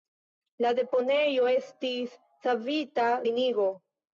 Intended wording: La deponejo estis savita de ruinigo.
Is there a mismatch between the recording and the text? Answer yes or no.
yes